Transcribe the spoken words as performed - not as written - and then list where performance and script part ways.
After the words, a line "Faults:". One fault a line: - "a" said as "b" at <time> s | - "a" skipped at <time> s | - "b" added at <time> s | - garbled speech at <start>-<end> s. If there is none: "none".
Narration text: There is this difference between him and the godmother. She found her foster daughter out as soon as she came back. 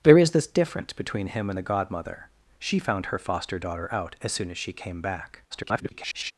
There is this difference between him and the godmother. She found her foster daughter out as soon as she came back. [garbled]
Faults:
- garbled speech at 5.5-6.3 s